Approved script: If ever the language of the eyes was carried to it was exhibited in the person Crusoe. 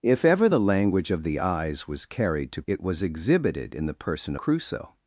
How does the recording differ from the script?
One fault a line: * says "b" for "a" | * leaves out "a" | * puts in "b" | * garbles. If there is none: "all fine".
all fine